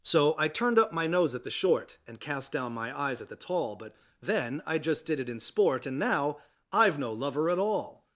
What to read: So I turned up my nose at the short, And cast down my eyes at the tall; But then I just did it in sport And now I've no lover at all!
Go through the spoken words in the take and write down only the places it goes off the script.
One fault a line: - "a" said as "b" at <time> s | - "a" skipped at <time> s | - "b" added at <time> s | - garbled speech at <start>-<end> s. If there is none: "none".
none